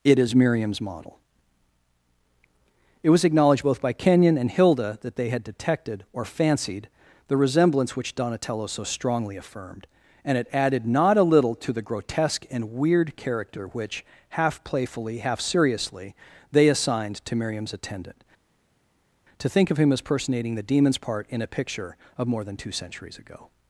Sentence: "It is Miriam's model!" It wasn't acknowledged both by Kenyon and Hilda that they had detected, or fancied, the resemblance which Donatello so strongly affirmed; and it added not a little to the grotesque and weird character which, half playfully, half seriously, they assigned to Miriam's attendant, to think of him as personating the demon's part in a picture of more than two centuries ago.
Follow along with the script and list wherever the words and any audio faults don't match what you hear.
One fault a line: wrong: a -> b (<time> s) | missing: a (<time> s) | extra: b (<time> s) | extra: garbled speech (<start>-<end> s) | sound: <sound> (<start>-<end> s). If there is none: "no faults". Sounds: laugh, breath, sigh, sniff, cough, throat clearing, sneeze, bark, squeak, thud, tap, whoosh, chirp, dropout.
wrong: wasn't -> was (3.1 s)